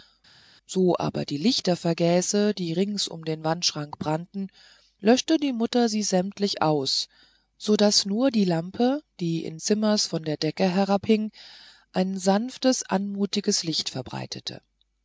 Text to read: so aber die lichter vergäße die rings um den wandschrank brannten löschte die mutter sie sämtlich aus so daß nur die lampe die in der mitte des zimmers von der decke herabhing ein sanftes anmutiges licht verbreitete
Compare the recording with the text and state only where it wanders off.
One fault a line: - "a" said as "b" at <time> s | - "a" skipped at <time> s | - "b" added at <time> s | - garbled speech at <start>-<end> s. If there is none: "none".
- "der mitte des" skipped at 9.6 s